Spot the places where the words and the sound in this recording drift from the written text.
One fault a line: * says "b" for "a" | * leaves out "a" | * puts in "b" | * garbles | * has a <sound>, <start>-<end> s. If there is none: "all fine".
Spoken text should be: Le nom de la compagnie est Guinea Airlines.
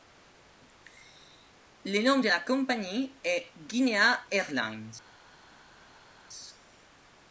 all fine